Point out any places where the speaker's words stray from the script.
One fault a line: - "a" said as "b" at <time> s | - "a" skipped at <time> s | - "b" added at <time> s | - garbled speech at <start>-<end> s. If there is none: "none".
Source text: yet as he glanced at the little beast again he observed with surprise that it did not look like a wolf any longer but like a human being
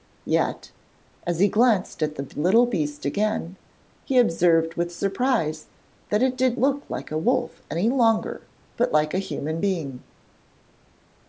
- "not" skipped at 6.6 s